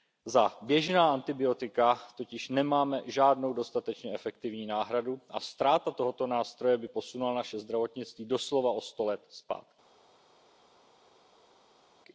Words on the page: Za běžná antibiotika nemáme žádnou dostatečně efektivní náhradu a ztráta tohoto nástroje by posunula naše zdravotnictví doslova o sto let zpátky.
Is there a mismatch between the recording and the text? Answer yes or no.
yes